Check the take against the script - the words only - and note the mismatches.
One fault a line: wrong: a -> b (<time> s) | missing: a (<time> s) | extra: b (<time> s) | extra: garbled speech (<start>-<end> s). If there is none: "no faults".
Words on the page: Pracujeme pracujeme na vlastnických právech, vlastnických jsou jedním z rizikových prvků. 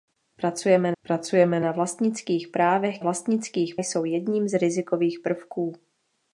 no faults